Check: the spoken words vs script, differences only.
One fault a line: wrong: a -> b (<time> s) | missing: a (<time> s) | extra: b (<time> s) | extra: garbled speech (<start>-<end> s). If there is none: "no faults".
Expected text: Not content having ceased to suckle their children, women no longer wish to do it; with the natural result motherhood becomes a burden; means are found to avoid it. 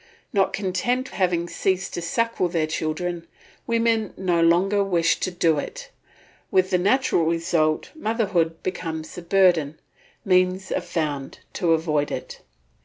no faults